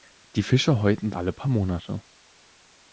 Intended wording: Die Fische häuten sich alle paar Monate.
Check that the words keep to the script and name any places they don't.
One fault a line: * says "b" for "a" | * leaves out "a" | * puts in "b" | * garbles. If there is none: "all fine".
* leaves out "sich"